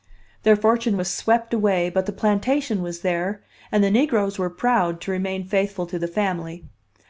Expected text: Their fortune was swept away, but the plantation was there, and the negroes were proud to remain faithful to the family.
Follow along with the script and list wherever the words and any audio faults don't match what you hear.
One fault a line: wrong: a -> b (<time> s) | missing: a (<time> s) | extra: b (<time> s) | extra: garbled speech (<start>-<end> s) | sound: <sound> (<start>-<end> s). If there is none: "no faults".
no faults